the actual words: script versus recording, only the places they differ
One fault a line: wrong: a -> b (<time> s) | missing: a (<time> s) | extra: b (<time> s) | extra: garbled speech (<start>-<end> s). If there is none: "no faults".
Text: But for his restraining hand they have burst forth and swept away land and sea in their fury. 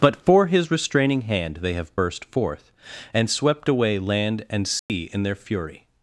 no faults